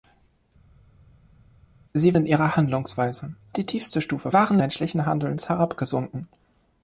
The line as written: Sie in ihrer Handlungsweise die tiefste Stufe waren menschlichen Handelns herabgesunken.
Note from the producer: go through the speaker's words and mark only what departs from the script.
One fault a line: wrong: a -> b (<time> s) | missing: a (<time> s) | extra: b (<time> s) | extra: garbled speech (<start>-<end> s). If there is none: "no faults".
no faults